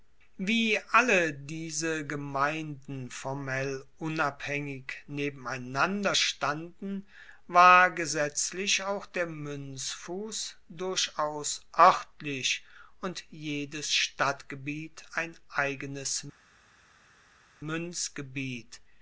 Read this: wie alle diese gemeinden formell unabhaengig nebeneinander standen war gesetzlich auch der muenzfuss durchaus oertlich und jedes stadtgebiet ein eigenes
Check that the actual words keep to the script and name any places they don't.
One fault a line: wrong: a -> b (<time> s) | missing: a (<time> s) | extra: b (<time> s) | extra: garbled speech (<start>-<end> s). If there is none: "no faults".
no faults